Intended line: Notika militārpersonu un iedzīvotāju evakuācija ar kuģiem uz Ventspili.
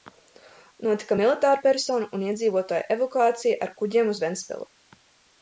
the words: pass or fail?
pass